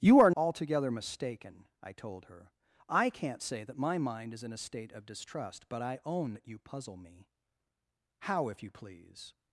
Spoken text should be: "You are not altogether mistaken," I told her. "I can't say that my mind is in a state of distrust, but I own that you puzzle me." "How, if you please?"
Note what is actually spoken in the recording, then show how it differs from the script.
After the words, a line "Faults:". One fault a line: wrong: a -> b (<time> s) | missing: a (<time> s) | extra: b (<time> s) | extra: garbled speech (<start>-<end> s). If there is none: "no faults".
"You are altogether mistaken," I told her. "I can't say that my mind is in a state of distrust, but I own that you puzzle me." "How, if you please?"
Faults:
missing: not (0.3 s)